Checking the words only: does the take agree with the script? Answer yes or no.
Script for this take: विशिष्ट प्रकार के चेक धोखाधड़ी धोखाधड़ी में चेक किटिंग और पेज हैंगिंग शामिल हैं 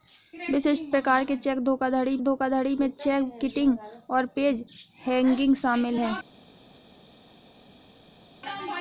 yes